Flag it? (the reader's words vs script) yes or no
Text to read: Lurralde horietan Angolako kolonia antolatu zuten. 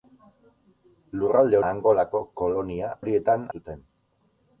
yes